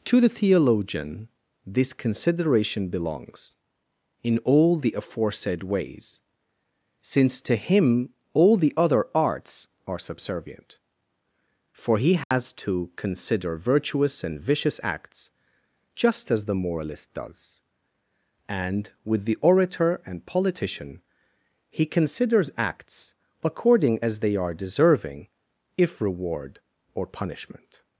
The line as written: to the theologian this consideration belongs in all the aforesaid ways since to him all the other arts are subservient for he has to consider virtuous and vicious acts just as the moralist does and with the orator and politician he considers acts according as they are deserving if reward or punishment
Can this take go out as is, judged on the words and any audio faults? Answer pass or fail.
fail